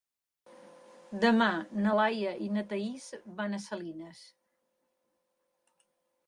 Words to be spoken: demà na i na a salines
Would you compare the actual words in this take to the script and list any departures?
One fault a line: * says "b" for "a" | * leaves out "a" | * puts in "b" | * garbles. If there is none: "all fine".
* puts in "laia"
* puts in "thaís van"